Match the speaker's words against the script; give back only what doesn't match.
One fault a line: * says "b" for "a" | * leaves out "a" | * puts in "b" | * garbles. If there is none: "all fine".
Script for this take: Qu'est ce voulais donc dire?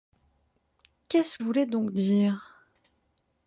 all fine